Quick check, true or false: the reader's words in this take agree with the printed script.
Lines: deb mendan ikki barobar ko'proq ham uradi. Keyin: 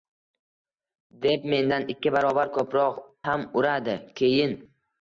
true